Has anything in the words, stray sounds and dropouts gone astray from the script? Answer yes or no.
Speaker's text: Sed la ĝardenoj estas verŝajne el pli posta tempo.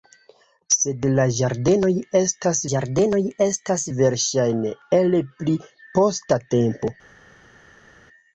yes